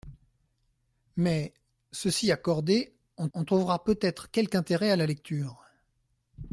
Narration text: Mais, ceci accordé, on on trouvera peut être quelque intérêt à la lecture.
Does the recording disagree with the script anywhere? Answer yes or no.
no